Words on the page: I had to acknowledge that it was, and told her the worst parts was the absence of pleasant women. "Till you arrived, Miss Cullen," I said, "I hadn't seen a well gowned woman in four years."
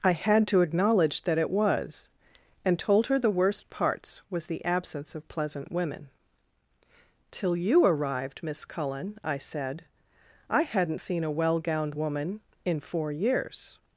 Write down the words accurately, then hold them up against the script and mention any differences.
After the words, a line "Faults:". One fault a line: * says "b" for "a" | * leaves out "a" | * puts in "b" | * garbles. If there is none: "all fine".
I had to acknowledge that it was, and told her the worst parts was the absence of pleasant women. "Till you arrived, Miss Cullen," I said, "I hadn't seen a well gowned woman in four years."
Faults:
all fine